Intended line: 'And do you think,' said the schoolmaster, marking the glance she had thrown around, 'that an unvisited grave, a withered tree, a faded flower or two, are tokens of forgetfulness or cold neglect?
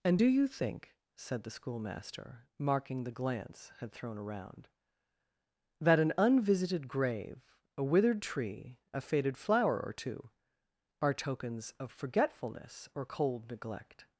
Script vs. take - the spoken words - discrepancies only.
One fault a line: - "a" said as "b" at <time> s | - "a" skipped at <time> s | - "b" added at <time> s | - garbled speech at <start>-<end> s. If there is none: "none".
- "she" skipped at 3.7 s